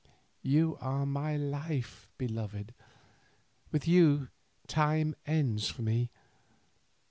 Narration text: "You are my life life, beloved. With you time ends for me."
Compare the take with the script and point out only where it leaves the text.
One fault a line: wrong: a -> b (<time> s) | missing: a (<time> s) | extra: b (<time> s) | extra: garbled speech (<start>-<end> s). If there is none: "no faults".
missing: life (2.1 s)